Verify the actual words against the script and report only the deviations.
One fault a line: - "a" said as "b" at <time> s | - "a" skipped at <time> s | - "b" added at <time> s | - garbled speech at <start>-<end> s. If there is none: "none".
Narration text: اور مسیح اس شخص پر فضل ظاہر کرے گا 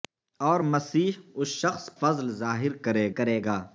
- "پر" skipped at 1.9 s
- "کرے" added at 3.1 s